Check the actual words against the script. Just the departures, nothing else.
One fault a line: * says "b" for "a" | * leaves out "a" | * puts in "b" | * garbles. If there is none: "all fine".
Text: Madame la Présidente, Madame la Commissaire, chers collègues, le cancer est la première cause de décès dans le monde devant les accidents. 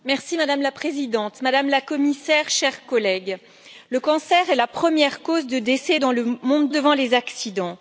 all fine